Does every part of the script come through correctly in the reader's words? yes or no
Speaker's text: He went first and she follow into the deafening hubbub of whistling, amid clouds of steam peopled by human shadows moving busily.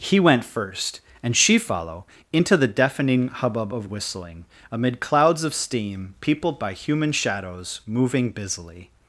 yes